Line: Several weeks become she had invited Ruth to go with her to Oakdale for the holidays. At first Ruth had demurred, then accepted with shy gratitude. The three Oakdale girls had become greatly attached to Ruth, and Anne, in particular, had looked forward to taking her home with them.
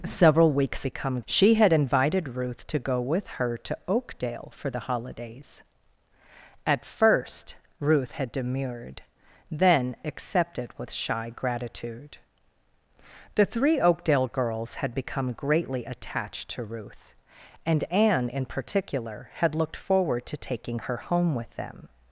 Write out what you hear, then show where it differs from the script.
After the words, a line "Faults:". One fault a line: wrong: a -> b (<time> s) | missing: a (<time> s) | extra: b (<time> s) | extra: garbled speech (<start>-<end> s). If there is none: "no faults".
Several weeks become she had invited Ruth to go with her to Oakdale for the holidays. At first Ruth had demurred, then accepted with shy gratitude. The three Oakdale girls had become greatly attached to Ruth, and Anne, in particular, had looked forward to taking her home with them.
Faults:
no faults